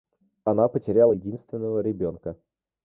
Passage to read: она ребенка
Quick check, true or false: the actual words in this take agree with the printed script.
false